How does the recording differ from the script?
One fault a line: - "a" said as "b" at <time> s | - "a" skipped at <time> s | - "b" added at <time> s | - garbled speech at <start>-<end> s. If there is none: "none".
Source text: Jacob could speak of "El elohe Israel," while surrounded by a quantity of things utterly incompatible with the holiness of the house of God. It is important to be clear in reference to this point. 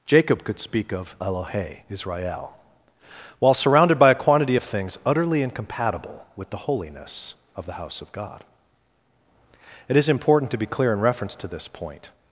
- "El" skipped at 1.1 s